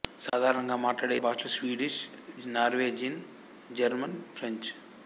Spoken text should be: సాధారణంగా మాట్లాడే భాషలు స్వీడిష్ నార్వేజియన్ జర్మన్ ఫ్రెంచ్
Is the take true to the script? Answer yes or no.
yes